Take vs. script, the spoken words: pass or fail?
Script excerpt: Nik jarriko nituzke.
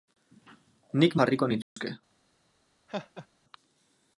pass